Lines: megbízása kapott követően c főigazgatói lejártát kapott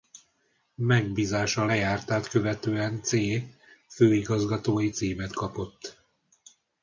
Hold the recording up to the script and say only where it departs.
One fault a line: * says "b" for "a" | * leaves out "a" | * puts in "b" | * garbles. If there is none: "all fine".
* says "lejártát" for "kapott"
* says "címet" for "lejártát"